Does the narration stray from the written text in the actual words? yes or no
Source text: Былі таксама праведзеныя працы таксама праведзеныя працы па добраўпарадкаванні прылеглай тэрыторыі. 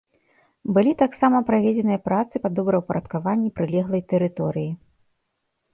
yes